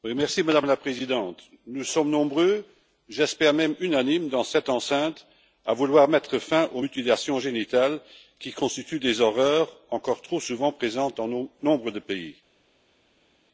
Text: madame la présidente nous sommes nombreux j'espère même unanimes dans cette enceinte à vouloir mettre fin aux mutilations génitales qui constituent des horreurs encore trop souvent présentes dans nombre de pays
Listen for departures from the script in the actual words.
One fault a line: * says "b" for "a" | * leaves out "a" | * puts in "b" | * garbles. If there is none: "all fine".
all fine